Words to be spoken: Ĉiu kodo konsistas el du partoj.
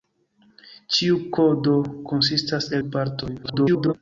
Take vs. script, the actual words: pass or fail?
fail